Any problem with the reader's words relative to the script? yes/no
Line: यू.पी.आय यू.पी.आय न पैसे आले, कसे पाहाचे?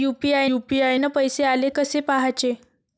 no